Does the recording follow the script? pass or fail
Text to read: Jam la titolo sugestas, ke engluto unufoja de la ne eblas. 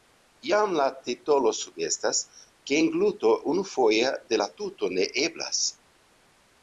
fail